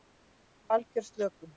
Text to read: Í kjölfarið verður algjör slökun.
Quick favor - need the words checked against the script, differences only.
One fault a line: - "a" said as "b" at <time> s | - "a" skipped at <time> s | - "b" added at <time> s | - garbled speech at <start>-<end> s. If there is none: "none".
- "kjölfarið verður" skipped at 0.7 s